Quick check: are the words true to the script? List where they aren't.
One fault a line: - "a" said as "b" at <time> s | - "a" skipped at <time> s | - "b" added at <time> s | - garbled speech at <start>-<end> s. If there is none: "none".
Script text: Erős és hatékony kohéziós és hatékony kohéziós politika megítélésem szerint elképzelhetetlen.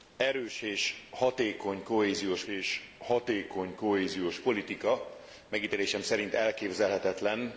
none